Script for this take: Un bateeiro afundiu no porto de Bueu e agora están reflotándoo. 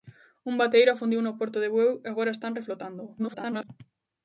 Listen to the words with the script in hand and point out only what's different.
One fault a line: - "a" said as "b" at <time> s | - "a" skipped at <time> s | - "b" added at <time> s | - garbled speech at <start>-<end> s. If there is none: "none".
- garbled speech at 3.2-3.7 s